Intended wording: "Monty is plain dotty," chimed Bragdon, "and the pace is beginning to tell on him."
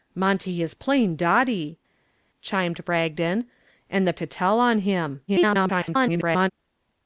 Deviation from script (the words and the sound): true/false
true